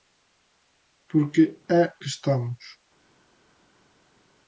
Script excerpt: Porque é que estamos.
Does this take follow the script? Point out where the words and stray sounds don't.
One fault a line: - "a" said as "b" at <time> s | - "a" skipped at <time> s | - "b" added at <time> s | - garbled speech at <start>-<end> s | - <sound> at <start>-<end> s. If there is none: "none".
none